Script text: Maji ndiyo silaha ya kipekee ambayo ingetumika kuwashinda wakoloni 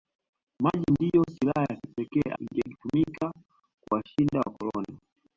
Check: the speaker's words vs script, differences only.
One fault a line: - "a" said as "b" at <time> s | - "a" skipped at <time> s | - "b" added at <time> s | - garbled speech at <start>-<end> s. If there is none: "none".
- "ambayo" skipped at 2.3 s